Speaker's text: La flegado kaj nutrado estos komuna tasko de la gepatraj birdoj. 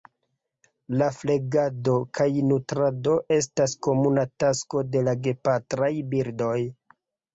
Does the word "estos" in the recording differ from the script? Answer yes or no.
yes